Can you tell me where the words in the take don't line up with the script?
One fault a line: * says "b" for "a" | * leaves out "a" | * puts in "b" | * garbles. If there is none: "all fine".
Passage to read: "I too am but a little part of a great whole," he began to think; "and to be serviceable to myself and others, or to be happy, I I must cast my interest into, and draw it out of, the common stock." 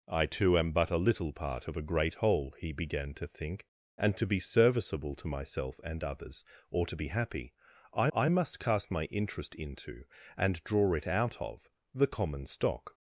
all fine